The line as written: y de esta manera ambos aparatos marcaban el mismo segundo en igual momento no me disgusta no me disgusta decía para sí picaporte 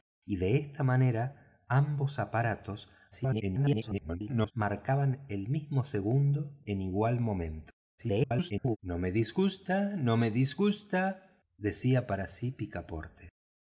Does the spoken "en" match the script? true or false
true